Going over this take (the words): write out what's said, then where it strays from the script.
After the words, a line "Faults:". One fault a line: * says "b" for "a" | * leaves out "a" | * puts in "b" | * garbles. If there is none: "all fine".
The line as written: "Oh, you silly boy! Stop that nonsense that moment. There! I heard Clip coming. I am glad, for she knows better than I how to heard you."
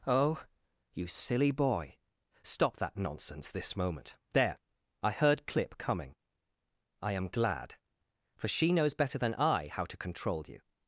"Oh, you silly boy! Stop that nonsense this moment. There! I heard Clip coming. I am glad, for she knows better than I how to control you."
Faults:
* says "this" for "that"
* says "control" for "heard"